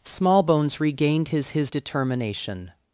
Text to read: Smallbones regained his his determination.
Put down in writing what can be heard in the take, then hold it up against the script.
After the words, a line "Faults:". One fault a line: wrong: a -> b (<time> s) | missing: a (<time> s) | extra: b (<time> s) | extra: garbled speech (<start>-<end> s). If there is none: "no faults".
Smallbones regained his his determination.
Faults:
no faults